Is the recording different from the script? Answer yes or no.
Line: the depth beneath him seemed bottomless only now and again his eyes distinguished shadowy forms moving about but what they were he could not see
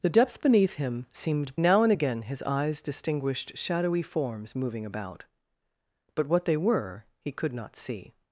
yes